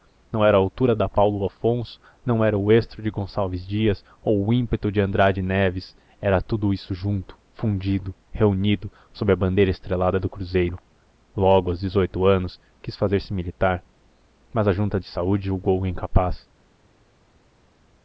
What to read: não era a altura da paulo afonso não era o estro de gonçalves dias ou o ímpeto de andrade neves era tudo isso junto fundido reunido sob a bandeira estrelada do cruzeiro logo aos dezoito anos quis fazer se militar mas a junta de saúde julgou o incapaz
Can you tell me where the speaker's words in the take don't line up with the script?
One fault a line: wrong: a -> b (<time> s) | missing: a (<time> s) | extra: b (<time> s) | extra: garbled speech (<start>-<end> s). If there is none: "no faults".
no faults